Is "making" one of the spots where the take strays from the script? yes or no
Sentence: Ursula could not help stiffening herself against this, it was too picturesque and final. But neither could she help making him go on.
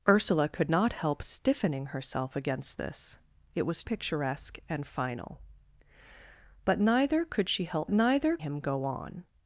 yes